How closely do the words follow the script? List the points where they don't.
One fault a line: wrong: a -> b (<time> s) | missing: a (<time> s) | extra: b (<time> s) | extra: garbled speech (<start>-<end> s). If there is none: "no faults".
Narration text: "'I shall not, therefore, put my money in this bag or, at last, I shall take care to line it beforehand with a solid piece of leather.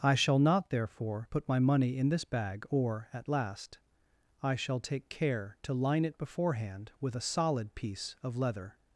no faults